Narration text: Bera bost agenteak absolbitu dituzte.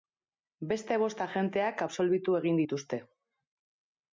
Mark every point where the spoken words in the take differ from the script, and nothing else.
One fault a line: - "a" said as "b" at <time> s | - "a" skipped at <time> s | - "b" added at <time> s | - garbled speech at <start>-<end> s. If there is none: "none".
- "Bera" said as "Beste" at 0.7 s
- "egin" added at 2.4 s